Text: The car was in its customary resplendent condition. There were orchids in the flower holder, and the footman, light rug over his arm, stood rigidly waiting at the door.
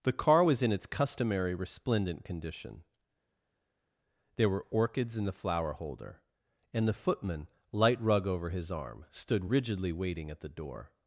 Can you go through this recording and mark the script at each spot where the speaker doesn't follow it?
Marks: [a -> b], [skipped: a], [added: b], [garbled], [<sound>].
The car was in its customary resplendent condition. There were orchids in the flower holder, and the footman, light rug over his arm, stood rigidly waiting at the door.